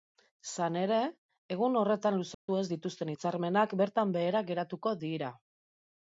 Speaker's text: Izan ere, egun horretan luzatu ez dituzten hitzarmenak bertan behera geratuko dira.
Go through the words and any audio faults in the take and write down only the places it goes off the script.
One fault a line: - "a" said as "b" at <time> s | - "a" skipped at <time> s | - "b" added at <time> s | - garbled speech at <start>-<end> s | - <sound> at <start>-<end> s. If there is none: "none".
- dropout at 2.3-2.5 s